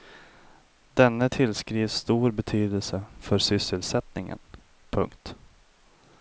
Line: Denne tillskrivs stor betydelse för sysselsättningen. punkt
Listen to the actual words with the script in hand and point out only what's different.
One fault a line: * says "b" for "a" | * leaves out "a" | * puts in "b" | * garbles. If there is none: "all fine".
all fine